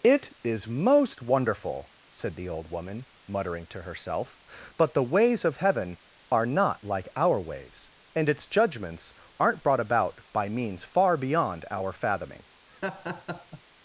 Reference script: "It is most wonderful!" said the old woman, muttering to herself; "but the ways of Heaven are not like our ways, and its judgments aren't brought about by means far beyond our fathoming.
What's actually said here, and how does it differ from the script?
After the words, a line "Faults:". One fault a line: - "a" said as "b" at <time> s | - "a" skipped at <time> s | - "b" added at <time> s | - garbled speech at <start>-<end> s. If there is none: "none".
"It is most wonderful!" said the old woman, muttering to herself; "but the ways of Heaven are not like our ways, and its judgments aren't brought about by means far beyond our fathoming.
Faults:
none